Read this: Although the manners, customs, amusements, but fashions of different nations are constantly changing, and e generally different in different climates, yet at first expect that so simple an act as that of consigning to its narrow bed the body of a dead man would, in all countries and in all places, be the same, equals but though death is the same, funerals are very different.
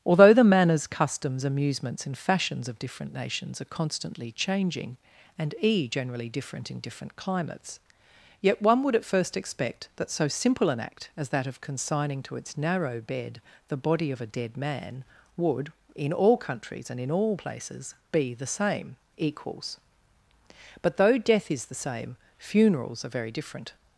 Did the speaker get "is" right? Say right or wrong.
right